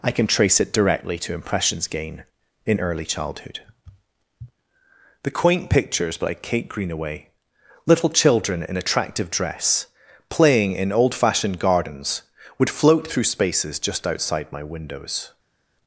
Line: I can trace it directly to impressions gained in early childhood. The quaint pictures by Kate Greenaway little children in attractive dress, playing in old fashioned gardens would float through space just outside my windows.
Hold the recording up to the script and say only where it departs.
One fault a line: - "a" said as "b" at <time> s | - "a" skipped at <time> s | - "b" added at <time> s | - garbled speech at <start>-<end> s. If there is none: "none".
- "gained" said as "gain" at 1.9 s
- "space" said as "spaces" at 13.2 s